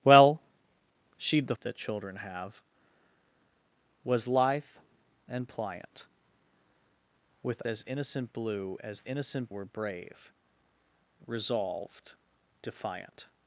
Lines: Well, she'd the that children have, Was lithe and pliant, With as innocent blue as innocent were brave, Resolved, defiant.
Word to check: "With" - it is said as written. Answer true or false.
true